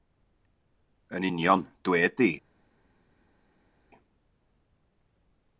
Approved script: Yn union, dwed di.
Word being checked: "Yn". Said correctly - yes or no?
yes